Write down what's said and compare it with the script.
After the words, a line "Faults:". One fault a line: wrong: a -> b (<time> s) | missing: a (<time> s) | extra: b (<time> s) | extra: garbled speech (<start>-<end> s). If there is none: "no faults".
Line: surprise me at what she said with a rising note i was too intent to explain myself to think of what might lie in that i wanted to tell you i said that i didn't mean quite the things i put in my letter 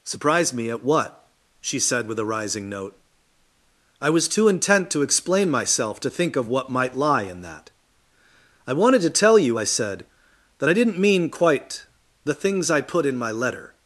surprise me at what she said with a rising note i was too intent to explain myself to think of what might lie in that i wanted to tell you i said that i didn't mean quite the things i put in my letter
Faults:
no faults